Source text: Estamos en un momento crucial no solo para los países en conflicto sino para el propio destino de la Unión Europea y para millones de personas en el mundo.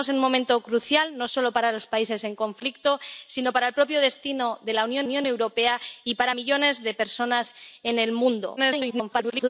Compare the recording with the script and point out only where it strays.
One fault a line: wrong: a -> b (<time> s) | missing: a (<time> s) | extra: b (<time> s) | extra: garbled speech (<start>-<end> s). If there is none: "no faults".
extra: Unión (5.1 s)
extra: garbled speech (8.6-9.5 s)